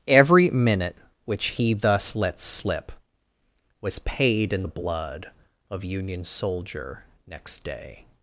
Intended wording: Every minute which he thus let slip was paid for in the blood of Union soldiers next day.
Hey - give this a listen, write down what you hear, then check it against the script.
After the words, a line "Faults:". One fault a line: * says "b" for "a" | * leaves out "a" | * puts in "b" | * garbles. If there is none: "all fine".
Every minute which he thus let slip was paid in the blood of Union soldier next day.
Faults:
* leaves out "for"
* says "soldier" for "soldiers"